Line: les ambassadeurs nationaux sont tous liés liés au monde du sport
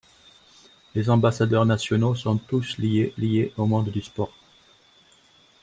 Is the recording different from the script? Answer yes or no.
no